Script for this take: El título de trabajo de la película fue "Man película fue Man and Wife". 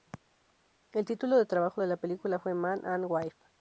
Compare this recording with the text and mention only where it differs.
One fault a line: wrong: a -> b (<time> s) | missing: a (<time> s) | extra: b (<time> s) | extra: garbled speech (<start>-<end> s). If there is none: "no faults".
missing: película fue Man (2.9 s)